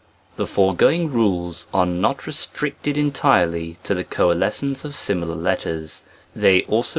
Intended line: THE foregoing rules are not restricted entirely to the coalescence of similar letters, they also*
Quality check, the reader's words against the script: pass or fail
pass